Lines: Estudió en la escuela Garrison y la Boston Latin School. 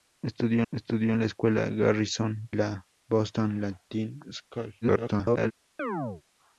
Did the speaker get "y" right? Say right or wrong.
wrong